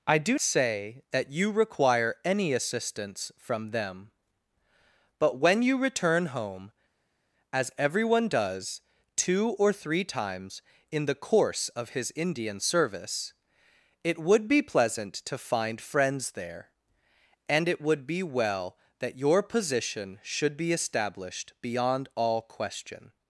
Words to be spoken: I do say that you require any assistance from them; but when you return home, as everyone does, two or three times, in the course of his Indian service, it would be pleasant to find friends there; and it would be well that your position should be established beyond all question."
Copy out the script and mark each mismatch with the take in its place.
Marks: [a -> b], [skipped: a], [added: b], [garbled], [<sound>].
I do say that you require any assistance from them; but when you return home, as everyone does, two or three times, in the course of his Indian service, it would be pleasant to find friends there; and it would be well that your position should be established beyond all question."